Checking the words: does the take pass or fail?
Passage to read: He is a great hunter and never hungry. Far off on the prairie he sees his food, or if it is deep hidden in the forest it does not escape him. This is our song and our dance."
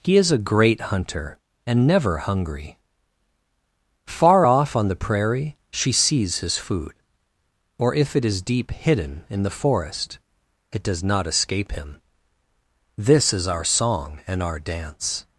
fail